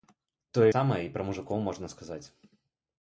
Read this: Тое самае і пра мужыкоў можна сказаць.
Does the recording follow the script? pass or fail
pass